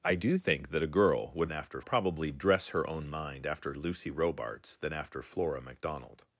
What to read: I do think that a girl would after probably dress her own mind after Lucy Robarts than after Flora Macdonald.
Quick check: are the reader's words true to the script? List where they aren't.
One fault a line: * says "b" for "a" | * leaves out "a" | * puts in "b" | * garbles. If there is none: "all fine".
all fine